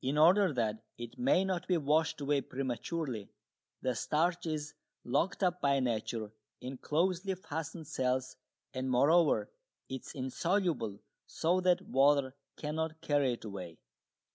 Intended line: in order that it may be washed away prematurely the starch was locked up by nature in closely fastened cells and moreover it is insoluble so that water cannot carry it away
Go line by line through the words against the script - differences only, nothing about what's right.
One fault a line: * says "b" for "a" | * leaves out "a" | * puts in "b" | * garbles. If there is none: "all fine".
* puts in "not"
* says "is" for "was"